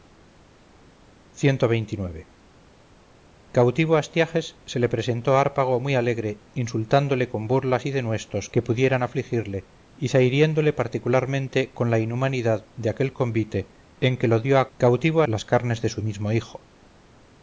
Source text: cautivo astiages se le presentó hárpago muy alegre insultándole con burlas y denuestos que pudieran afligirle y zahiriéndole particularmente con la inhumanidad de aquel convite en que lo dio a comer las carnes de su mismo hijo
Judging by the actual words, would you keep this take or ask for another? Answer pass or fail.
fail